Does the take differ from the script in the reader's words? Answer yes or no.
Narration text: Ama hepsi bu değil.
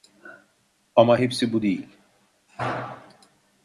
no